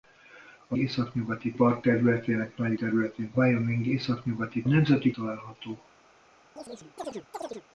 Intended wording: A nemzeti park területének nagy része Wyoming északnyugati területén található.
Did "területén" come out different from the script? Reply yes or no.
yes